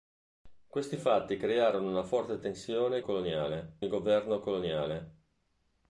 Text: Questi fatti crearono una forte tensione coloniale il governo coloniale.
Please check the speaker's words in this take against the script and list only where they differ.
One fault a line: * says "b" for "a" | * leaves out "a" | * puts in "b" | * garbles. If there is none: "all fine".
all fine